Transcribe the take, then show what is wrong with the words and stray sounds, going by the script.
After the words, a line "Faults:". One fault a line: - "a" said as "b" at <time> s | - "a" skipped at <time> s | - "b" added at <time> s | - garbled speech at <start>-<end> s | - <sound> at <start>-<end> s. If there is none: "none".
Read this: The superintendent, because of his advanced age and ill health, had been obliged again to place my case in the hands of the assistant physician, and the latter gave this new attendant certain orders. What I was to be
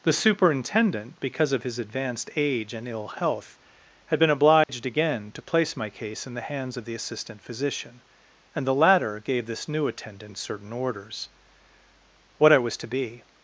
The superintendent, because of his advanced age and ill health, had been obliged again to place my case in the hands of the assistant physician, and the latter gave this new attendant certain orders. What I was to be
Faults:
- dropout at 4.6-4.7 s